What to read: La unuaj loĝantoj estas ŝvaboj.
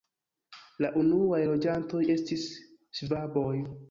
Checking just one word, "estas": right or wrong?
wrong